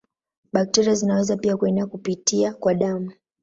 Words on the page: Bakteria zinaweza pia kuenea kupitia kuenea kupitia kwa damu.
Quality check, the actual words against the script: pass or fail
fail